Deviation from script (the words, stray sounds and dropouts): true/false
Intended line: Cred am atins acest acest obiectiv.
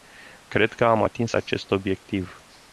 true